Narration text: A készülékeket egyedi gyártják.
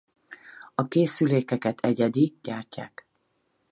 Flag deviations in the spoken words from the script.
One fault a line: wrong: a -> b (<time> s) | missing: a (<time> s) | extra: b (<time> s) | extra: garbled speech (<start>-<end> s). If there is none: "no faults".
no faults